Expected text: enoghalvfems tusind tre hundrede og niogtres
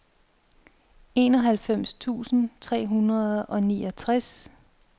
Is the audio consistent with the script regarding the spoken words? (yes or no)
yes